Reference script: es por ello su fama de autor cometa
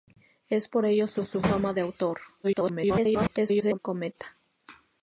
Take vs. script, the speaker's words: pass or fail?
fail